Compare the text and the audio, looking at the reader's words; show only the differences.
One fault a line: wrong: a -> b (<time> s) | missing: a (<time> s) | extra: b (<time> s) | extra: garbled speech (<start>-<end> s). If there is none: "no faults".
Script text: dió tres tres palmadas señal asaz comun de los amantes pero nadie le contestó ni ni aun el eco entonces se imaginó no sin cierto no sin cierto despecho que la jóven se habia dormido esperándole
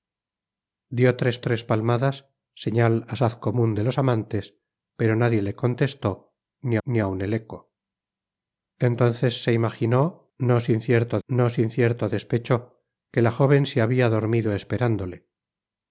no faults